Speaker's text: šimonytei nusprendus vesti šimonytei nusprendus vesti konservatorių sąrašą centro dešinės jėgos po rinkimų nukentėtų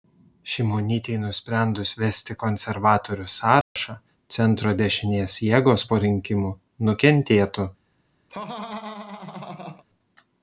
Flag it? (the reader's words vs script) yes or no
yes